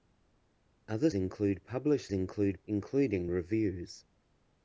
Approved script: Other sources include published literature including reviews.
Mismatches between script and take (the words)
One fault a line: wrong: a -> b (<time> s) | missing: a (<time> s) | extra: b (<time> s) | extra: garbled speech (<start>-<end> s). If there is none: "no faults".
missing: sources (1.1 s)
wrong: literature -> include (2.1 s)